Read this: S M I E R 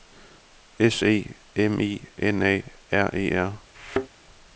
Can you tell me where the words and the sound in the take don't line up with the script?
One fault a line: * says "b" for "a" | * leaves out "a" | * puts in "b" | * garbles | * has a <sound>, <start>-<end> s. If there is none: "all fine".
* puts in "E"
* puts in "N A R"
* has a thud, 3.7-4.1 s